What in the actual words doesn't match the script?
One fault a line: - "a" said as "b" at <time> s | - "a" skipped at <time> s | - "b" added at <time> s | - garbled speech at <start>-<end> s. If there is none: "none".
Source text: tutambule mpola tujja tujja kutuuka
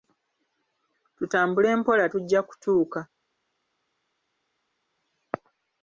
- "tujja" skipped at 2.4 s